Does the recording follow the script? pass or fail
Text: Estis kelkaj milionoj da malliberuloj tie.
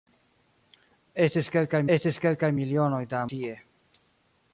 fail